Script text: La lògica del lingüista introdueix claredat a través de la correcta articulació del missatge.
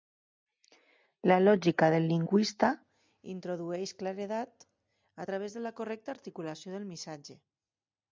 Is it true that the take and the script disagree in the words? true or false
false